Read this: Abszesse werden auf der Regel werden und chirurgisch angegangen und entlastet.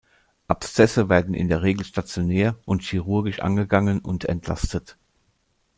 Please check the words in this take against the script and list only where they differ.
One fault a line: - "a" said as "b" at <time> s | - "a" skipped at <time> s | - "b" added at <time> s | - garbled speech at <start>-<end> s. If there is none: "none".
- "auf" said as "in" at 1.4 s
- "werden" said as "stationär" at 1.9 s